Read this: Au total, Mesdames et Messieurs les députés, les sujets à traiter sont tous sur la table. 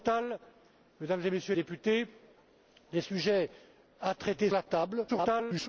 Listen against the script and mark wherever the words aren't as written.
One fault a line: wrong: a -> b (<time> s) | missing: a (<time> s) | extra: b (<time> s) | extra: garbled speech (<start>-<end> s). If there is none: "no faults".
missing: les (1.5 s)
missing: sont tous sur (4.5 s)
extra: garbled speech (5.1-5.7 s)